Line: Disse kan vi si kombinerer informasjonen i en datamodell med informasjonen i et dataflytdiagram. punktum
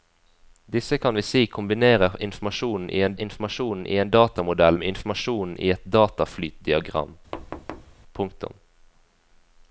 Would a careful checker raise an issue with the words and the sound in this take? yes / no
yes